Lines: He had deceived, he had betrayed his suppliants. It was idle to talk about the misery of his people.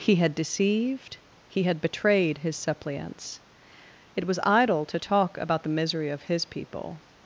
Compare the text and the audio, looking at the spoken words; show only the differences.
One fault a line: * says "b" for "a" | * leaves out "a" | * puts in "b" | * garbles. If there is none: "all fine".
all fine